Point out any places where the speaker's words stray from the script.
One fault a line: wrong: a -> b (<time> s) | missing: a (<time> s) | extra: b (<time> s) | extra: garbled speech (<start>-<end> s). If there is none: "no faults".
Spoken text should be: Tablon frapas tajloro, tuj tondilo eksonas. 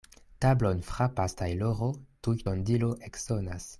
no faults